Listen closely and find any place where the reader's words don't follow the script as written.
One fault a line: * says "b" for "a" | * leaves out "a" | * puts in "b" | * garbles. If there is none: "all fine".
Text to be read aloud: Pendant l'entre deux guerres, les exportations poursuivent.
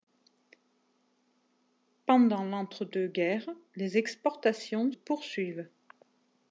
all fine